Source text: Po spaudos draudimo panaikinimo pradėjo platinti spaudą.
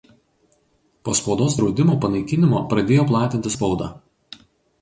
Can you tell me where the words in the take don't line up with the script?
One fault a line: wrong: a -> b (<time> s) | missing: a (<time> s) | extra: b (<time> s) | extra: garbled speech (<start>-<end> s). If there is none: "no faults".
no faults